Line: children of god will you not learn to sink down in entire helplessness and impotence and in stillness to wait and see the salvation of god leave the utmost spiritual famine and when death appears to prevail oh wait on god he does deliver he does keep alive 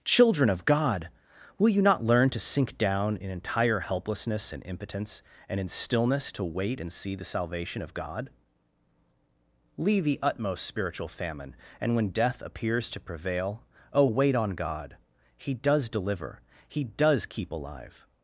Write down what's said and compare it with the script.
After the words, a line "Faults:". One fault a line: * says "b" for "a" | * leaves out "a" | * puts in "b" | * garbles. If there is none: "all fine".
children of god will you not learn to sink down in entire helplessness and impotence and in stillness to wait and see the salvation of god leave the utmost spiritual famine and when death appears to prevail oh wait on god he does deliver he does keep alive
Faults:
all fine